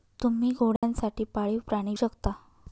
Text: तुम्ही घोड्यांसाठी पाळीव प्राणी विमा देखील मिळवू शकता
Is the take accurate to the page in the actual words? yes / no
no